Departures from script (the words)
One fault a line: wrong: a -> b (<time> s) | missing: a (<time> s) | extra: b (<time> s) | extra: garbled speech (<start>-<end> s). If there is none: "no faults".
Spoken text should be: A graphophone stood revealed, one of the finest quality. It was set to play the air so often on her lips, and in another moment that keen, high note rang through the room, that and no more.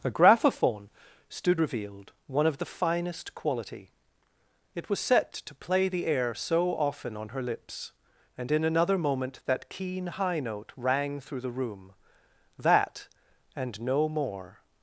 no faults